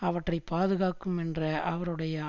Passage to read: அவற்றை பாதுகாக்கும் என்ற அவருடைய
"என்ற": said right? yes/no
yes